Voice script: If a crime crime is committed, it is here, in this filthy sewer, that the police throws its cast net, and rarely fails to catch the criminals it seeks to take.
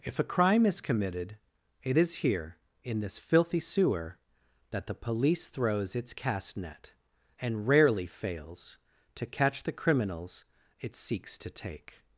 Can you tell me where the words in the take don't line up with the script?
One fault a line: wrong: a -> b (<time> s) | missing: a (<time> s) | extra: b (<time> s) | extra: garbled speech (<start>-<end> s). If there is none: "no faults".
missing: crime (0.7 s)